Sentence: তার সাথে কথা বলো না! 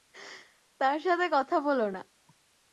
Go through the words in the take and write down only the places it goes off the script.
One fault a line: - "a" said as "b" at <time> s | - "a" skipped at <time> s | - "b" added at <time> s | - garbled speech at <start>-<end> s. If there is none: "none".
none